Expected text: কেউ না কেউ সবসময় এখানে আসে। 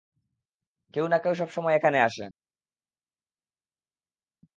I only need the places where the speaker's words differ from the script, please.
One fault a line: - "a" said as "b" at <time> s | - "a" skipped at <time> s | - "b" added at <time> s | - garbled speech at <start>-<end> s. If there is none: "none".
none